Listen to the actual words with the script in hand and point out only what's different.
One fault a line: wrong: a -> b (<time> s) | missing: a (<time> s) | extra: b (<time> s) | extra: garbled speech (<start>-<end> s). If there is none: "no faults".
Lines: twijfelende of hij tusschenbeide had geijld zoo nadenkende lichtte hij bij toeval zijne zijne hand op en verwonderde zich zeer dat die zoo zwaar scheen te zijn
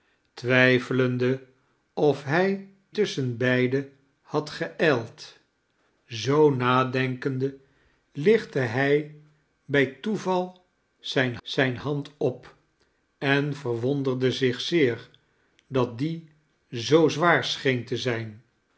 no faults